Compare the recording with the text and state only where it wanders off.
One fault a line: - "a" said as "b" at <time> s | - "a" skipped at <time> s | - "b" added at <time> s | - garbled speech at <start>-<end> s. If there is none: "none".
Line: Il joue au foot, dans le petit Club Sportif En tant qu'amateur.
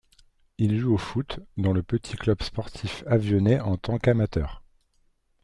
- "Avionnais" added at 3.0 s